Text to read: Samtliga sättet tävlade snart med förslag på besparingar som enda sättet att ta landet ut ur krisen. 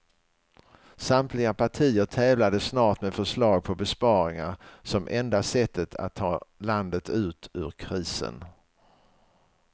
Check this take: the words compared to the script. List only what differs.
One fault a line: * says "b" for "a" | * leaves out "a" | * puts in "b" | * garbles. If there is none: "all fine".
* says "partier" for "sättet"